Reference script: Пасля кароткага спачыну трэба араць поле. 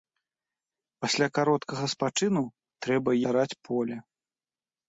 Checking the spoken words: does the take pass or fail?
pass